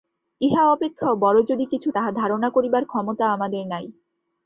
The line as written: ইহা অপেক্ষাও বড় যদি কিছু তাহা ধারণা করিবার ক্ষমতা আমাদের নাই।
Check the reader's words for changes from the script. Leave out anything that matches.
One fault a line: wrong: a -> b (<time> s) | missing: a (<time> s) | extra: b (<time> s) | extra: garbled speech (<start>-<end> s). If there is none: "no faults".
no faults